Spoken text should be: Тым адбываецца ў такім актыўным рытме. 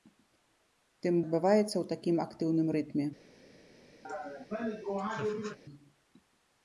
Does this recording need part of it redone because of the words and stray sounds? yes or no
yes